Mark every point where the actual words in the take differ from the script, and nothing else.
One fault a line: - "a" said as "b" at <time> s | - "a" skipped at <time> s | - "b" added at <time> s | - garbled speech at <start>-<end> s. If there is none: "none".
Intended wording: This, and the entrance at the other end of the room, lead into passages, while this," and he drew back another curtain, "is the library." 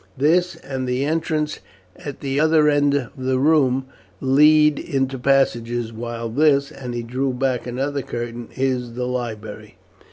none